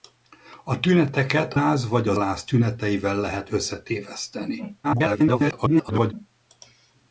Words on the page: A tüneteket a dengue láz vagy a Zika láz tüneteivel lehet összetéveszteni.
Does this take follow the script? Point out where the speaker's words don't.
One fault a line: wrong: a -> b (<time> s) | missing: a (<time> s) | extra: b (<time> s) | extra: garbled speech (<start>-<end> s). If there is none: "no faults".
missing: a dengue (1.5 s)
missing: Zika (2.1 s)
extra: garbled speech (4.8-6.1 s)